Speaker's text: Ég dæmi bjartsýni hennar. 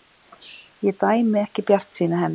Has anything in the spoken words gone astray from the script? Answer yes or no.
yes